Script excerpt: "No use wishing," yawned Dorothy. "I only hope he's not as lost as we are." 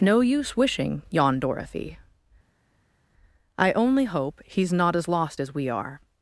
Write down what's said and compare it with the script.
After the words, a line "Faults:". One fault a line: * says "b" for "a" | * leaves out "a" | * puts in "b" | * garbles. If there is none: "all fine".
"No use wishing," yawned Dorothy. "I only hope he's not as lost as we are."
Faults:
all fine